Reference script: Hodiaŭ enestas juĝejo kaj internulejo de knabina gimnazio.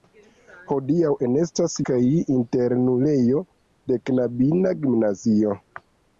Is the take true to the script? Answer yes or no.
no